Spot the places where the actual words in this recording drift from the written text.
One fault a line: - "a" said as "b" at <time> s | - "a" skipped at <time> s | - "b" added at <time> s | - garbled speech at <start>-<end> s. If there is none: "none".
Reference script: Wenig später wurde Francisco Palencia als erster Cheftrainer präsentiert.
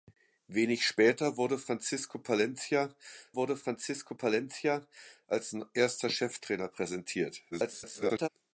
- "wurde Francisco Palencia" added at 3.4 s
- garbled speech at 7.5-8.3 s